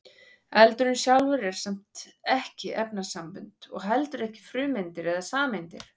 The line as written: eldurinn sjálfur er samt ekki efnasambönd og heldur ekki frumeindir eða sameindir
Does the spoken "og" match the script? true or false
true